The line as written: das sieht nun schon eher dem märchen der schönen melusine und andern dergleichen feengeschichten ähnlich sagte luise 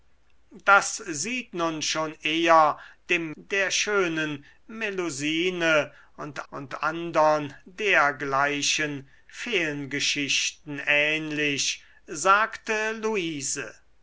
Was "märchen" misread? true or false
true